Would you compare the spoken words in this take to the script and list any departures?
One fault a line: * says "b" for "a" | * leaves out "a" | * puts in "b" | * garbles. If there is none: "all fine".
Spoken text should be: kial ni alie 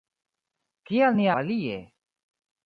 all fine